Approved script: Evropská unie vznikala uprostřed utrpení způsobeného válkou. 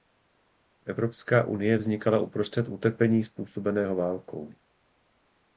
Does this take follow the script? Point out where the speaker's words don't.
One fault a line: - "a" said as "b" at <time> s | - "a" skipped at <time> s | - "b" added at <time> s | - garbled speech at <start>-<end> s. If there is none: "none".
none